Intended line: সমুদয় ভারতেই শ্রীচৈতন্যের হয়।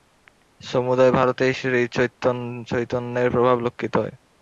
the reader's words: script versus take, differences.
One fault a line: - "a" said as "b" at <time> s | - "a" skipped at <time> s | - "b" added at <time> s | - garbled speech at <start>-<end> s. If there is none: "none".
- "প্রভাব লক্ষিত" added at 3.3 s